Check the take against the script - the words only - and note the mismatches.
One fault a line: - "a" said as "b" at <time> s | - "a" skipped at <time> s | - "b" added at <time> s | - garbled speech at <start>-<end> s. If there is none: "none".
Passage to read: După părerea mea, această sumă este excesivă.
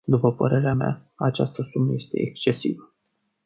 none